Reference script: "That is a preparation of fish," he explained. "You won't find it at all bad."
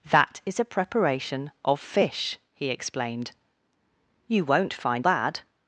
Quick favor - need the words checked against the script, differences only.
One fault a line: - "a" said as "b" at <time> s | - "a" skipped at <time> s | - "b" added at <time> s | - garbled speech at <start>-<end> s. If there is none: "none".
- "it at all" skipped at 5.0 s